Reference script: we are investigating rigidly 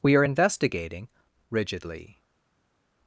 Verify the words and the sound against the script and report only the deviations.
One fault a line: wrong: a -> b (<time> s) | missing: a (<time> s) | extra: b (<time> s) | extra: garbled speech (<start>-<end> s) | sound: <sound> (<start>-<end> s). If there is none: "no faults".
no faults